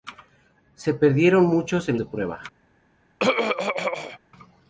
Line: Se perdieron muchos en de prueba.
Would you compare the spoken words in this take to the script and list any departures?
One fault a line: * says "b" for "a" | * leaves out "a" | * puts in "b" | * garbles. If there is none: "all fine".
all fine